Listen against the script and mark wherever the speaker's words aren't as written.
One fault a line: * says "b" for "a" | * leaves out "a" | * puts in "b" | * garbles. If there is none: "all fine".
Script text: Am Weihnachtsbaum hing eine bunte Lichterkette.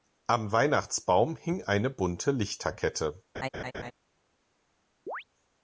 all fine